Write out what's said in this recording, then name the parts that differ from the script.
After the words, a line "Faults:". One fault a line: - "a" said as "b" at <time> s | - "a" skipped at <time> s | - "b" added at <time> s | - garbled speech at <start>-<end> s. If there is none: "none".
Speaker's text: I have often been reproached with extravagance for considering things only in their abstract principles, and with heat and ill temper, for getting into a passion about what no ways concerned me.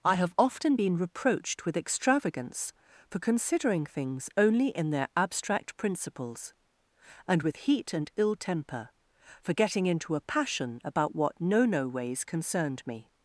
I have often been reproached with extravagance for considering things only in their abstract principles, and with heat and ill temper, for getting into a passion about what no no ways concerned me.
Faults:
- "no" added at 11.6 s